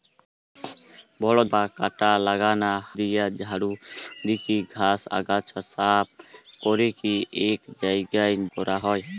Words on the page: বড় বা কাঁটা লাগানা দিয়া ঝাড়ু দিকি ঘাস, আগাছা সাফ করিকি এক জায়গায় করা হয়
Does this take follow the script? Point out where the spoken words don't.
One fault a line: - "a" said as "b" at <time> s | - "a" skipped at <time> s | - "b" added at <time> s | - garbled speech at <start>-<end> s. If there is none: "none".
none